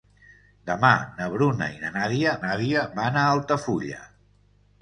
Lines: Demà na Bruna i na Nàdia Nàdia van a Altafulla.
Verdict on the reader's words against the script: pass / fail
pass